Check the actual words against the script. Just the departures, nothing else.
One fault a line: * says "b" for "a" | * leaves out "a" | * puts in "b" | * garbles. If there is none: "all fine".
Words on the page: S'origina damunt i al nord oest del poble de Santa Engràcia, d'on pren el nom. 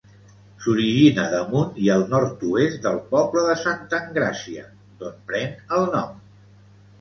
all fine